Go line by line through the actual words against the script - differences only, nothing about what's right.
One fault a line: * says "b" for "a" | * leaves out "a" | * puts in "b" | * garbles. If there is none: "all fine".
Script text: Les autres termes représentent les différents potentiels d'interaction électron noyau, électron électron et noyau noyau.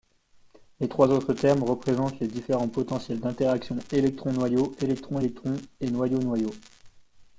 * puts in "trois"